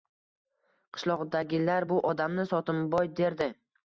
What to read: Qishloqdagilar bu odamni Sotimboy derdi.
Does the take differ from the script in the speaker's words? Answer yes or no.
no